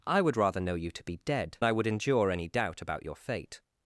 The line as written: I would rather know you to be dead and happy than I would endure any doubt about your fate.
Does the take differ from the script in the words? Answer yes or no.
yes